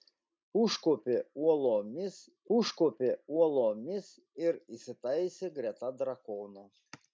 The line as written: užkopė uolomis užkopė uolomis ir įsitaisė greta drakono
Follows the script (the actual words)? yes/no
yes